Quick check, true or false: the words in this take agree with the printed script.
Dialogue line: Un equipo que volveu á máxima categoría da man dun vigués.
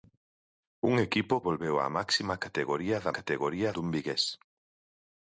false